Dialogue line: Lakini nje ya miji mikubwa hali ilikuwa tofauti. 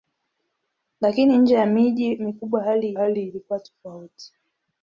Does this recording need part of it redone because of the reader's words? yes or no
yes